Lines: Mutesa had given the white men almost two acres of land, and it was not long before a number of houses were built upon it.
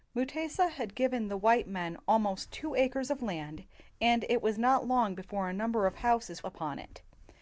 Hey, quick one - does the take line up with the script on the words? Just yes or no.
no